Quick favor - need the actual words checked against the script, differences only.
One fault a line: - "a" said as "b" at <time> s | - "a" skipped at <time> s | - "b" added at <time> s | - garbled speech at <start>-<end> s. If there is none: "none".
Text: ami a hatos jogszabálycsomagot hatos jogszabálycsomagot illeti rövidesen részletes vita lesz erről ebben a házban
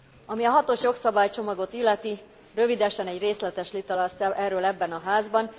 - "hatos jogszabálycsomagot" skipped at 1.7 s
- "egy" added at 3.1 s